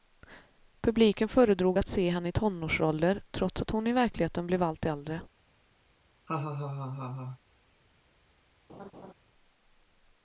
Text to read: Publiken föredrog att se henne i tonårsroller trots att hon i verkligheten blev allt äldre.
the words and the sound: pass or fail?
fail